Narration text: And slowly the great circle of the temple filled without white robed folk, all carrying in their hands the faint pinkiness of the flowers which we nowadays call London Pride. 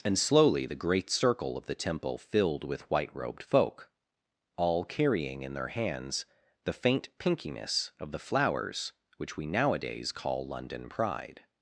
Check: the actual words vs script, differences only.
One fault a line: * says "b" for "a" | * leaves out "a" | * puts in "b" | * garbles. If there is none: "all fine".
* says "with" for "without"